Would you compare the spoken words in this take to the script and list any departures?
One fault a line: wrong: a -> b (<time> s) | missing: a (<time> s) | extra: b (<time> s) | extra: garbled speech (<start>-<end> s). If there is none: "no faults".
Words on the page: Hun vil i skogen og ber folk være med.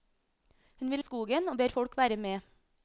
no faults